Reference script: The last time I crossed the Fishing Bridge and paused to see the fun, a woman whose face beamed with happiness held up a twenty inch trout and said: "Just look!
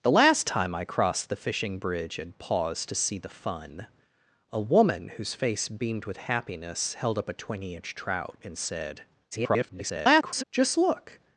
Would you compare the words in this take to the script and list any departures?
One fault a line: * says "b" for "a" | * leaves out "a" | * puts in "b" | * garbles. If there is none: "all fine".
* garbles